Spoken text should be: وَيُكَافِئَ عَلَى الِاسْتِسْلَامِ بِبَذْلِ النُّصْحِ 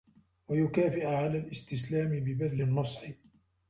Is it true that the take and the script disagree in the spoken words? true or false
false